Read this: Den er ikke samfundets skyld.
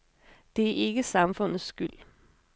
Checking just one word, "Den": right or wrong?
wrong